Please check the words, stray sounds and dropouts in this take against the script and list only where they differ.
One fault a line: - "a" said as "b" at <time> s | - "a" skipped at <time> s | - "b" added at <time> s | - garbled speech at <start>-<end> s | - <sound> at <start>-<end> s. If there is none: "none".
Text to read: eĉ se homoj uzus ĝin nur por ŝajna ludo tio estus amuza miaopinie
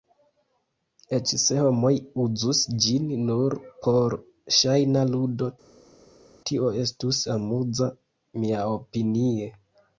none